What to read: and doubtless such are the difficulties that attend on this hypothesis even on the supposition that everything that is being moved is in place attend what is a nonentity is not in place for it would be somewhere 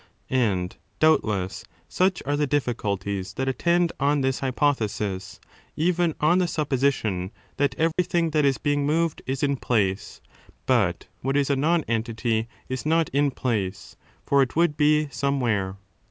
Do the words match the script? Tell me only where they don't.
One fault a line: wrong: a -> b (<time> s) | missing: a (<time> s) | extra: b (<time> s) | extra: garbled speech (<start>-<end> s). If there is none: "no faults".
wrong: attend -> but (10.7 s)